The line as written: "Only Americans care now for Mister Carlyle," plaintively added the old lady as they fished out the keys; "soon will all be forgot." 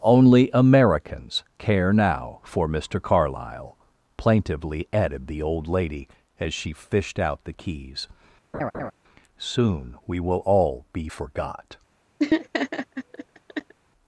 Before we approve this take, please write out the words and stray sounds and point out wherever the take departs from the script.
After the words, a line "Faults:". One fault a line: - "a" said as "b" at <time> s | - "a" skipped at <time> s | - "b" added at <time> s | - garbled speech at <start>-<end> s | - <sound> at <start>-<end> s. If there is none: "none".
"Only Americans care now for Mister Carlyle," plaintively added the old lady as she fished out the keys; "soon we will all be forgot."
Faults:
- "they" said as "she" at 6.5 s
- laugh at 8.5-8.9 s
- "we" added at 10.1 s
- laugh at 12.2-13.7 s